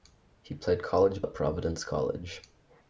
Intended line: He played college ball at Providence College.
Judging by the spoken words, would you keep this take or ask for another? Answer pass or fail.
fail